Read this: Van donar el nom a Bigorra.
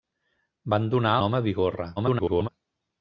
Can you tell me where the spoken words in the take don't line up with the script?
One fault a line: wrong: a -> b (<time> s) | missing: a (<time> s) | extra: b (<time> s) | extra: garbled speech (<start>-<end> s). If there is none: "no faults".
missing: el (1.1 s)
extra: garbled speech (2.0-2.5 s)